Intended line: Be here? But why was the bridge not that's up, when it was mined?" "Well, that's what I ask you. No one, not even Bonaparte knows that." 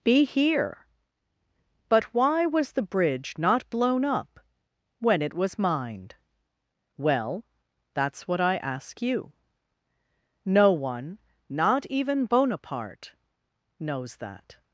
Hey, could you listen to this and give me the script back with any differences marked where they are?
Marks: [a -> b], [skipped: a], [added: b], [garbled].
Be here? But why was the bridge not [that's -> blown] up, when it was mined?" "Well, that's what I ask you. No one, not even Bonaparte knows that."